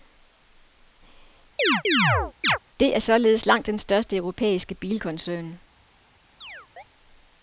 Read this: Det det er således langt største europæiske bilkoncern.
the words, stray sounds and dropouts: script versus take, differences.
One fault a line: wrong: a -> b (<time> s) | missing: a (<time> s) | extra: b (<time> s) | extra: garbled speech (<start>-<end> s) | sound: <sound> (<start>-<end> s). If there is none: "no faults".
sound: chirp (1.6-2.6 s)
missing: det (3.0 s)
extra: den (3.7 s)
sound: chirp (6.4-6.8 s)